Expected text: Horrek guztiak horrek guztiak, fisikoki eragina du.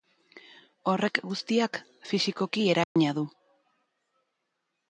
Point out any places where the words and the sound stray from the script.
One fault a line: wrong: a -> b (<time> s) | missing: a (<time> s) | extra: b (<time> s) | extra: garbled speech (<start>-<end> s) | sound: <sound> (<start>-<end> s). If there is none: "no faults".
missing: horrek guztiak (1.8 s)
sound: dropout (2.8-3.0 s)